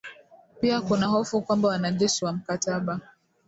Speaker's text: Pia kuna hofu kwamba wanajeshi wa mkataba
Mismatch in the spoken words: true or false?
false